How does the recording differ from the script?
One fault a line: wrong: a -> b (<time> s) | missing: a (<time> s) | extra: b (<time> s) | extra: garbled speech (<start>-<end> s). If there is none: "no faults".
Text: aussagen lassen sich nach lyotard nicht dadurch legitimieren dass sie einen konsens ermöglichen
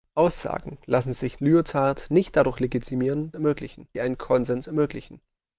missing: nach (1.4 s)
wrong: dass -> ermöglichen (3.3 s)